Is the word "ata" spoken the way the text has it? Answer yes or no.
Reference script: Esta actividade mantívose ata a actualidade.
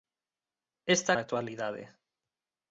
no